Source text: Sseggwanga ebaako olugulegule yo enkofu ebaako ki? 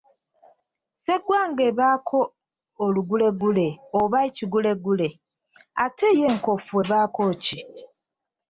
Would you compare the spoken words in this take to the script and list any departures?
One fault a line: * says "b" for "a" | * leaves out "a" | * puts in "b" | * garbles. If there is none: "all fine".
* puts in "oba ekigulegule ate"